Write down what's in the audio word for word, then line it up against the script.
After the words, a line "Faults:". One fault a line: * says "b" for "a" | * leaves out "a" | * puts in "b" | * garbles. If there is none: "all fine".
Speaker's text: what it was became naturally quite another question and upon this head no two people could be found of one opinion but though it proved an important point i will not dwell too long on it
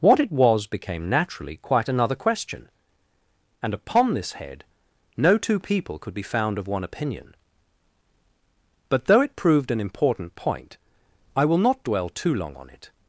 what it was became naturally quite another question and upon this head no two people could be found of one opinion but though it proved an important point i will not dwell too long on it
Faults:
all fine